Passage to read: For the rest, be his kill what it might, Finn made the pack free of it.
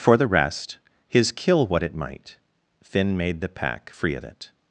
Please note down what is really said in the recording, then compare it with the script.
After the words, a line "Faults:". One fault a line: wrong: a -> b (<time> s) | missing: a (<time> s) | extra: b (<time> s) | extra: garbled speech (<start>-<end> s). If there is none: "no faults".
For the rest, his kill what it might, Finn made the pack free of it.
Faults:
missing: be (0.8 s)